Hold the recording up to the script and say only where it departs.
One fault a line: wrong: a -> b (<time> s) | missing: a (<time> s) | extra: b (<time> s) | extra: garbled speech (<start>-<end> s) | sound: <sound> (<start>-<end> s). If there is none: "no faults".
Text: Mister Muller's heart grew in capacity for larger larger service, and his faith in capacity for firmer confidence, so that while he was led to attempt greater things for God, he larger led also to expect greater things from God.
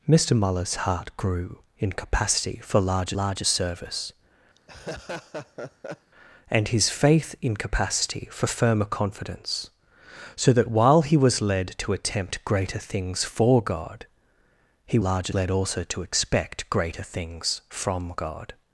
sound: laugh (4.6-6.1 s)